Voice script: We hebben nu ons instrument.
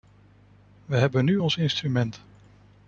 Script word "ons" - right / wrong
right